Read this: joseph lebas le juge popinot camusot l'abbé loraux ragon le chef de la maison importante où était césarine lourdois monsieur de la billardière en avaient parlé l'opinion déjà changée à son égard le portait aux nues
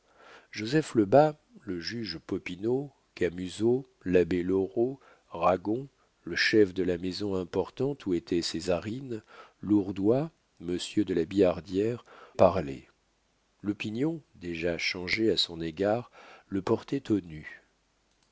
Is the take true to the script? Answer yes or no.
no